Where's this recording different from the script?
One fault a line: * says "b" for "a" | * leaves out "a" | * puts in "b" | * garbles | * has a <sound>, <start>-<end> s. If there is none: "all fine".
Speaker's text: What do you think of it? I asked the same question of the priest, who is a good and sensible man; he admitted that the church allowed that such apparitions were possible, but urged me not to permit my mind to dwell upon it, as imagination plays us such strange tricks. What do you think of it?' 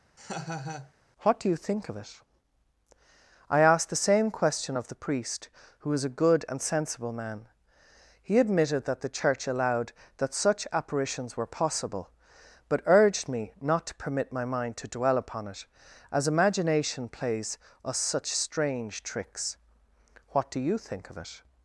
* has a laugh, 0.2-0.9 s
* says "was" for "is"